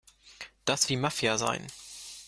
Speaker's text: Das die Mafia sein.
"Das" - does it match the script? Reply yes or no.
yes